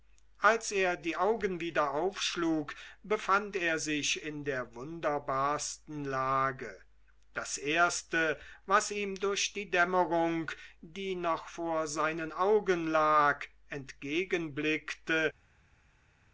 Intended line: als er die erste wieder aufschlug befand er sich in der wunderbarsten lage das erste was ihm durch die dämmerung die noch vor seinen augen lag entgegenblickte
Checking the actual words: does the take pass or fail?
fail